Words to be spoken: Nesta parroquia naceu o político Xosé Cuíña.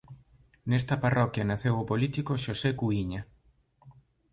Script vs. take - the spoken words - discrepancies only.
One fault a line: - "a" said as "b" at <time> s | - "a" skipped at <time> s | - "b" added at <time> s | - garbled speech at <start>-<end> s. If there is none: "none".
none